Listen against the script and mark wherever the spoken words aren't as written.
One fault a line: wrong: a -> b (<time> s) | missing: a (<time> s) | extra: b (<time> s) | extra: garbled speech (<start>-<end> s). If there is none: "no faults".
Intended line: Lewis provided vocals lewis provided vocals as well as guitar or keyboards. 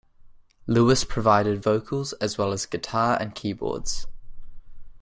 missing: lewis provided vocals (2.1 s)
wrong: or -> and (3.2 s)